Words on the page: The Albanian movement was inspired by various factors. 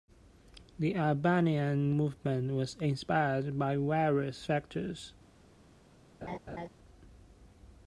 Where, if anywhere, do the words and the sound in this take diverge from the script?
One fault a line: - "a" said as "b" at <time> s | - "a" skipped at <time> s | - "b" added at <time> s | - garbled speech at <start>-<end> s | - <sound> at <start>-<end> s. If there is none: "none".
- laugh at 6.2-6.7 s